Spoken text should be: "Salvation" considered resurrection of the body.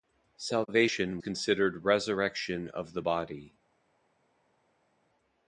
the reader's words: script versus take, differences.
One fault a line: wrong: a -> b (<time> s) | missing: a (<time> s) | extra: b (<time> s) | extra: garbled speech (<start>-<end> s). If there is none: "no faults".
no faults